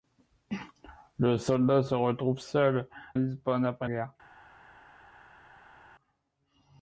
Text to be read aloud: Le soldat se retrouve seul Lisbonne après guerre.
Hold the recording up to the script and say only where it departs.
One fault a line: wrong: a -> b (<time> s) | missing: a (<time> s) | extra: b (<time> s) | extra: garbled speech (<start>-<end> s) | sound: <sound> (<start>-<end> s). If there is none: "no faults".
no faults